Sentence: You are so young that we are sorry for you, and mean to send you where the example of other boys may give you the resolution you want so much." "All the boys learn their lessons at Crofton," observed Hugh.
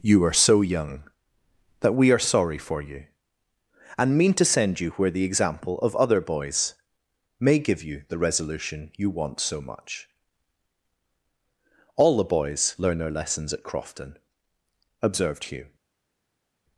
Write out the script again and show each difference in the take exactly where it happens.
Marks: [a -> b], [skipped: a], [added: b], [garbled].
You are so young that we are sorry for you, and mean to send you where the example of other boys may give you the resolution you want so much." "All the boys learn their lessons at Crofton," observed Hugh.